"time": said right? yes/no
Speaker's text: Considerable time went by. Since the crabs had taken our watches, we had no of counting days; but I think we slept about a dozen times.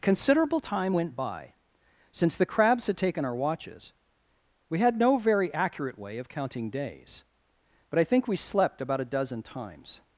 yes